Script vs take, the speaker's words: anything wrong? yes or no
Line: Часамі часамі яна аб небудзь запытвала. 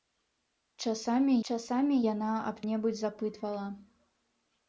no